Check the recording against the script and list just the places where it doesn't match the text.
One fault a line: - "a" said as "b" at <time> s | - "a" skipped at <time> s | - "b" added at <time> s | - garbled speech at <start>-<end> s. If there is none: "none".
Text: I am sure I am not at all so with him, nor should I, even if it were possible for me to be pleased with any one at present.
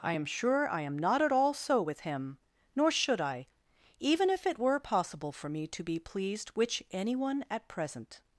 - "with" said as "which" at 6.5 s